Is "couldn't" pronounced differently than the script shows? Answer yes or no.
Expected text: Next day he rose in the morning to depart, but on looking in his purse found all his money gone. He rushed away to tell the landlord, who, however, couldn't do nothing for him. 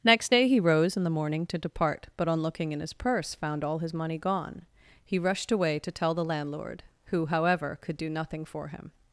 yes